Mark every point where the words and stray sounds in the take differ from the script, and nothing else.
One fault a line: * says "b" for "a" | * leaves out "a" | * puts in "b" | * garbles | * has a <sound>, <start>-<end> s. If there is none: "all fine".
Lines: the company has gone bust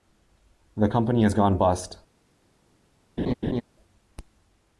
* has a laugh, 3.2-3.6 s